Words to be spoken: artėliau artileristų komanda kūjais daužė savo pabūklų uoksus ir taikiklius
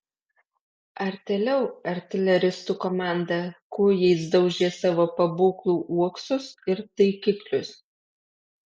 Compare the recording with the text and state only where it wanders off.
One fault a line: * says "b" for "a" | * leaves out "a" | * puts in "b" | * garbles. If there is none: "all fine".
all fine